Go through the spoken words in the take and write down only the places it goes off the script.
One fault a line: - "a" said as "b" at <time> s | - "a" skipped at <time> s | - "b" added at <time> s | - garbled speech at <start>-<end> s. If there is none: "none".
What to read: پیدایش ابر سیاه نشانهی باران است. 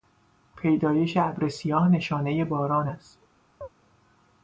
none